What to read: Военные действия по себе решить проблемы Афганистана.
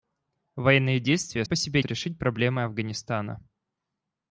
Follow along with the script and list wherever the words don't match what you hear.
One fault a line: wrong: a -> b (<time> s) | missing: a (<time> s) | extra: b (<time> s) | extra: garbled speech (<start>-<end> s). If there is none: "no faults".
no faults